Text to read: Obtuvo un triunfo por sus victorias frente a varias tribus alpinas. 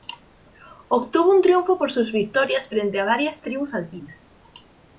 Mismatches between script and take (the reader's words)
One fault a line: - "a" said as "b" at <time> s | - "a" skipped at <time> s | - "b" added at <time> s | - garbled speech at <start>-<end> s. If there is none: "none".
none